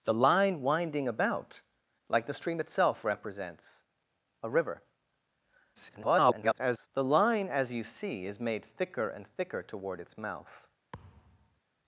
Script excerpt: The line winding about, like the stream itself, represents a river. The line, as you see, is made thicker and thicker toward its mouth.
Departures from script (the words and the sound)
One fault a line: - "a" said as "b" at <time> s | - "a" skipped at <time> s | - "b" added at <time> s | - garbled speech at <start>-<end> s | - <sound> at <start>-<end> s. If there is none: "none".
- garbled speech at 5.7-6.9 s
- thud at 10.9-11.6 s